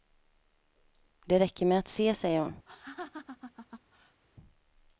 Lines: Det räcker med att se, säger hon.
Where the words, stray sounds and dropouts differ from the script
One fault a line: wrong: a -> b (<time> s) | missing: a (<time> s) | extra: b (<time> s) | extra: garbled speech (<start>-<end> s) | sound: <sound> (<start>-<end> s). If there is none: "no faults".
sound: laugh (2.7-4.2 s)